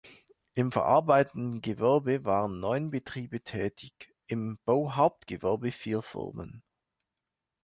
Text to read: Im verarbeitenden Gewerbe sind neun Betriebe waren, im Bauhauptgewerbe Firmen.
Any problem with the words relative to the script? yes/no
yes